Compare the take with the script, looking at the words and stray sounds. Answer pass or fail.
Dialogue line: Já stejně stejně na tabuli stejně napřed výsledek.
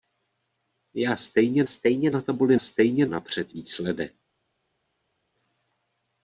pass